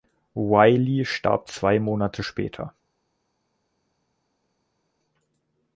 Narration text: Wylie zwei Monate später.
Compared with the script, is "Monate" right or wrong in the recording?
right